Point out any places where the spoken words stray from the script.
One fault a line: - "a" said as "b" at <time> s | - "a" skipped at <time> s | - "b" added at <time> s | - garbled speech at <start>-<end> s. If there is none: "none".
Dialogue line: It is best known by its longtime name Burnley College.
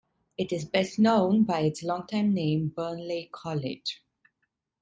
none